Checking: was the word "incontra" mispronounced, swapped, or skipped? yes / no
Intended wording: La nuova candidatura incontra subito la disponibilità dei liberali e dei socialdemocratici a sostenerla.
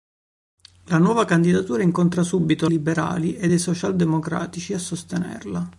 no